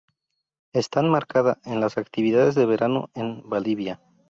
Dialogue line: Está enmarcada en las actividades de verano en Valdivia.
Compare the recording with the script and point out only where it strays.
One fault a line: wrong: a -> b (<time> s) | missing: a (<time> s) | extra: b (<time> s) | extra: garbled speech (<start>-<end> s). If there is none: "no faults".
no faults